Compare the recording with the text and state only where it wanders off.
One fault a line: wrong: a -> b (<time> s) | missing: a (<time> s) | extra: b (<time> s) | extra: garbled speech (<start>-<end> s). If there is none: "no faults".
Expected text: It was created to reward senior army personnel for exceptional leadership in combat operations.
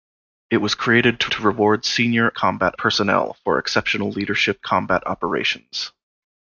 extra: to (1.3 s)
wrong: army -> combat (2.3 s)
missing: in (4.6 s)